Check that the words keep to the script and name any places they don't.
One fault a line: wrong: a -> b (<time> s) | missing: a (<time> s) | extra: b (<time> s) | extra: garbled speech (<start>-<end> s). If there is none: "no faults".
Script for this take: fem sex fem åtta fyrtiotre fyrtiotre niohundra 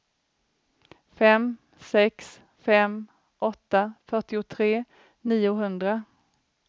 missing: fyrtiotre (4.7 s)